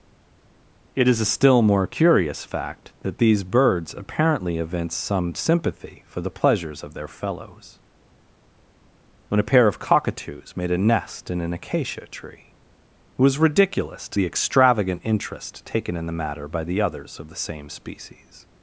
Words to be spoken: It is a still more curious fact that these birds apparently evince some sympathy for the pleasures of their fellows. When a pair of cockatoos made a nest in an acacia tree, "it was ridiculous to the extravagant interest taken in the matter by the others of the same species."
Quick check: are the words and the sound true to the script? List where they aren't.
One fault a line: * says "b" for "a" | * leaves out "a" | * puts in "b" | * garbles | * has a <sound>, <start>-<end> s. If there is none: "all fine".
all fine